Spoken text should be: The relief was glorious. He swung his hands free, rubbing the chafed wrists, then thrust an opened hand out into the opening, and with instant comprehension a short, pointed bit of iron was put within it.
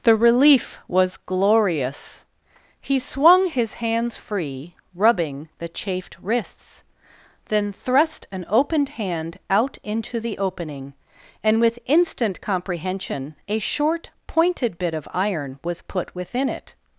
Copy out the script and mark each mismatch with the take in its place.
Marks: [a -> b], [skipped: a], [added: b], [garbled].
The relief was glorious. He swung his hands free, rubbing the chafed wrists, then thrust an opened hand out into the opening, and with instant comprehension a short, pointed bit of iron was put within it.